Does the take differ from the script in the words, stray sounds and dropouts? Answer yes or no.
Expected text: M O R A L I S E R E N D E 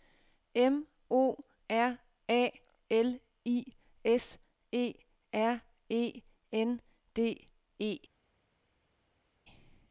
no